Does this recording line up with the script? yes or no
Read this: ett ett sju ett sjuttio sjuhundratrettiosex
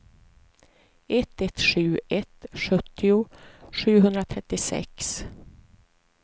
yes